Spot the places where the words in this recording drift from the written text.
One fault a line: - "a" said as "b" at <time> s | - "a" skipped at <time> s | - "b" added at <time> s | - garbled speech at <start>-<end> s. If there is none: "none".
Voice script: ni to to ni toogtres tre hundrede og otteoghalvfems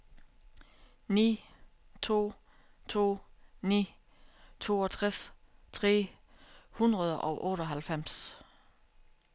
none